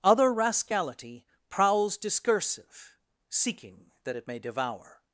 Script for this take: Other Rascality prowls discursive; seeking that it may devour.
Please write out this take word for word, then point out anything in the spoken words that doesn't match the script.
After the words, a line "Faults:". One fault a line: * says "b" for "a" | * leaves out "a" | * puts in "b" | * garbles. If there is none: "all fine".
Other Rascality prowls discursive; seeking that it may devour.
Faults:
all fine